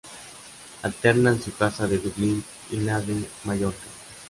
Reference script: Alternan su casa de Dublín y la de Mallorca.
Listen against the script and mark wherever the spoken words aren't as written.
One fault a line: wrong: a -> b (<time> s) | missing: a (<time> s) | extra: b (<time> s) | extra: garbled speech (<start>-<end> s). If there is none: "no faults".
no faults